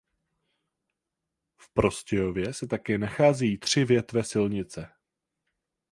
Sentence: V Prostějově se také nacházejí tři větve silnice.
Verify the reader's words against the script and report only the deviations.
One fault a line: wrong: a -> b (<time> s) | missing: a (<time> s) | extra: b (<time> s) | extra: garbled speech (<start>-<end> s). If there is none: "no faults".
no faults